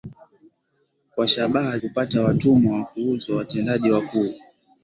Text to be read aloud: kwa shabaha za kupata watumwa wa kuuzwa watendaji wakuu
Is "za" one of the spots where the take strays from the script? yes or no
yes